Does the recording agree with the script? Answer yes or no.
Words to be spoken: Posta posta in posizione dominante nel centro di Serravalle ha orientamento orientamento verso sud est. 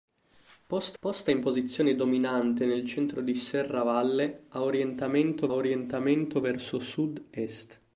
yes